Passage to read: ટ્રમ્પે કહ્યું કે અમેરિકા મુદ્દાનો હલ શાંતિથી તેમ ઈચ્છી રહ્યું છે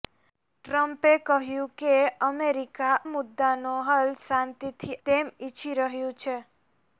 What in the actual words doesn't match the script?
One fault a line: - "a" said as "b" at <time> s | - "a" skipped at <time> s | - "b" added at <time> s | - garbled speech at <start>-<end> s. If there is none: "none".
none